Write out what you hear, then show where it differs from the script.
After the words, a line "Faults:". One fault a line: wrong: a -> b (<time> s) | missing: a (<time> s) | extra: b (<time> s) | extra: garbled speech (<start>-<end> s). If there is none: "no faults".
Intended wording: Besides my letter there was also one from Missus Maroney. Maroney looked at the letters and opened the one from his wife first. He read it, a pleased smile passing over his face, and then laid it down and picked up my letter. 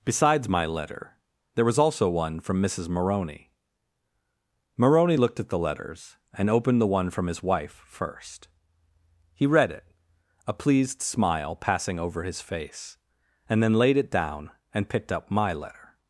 Besides my letter there was also one from Missus Maroney. Maroney looked at the letters and opened the one from his wife first. He read it, a pleased smile passing over his face, and then laid it down and picked up my letter.
Faults:
no faults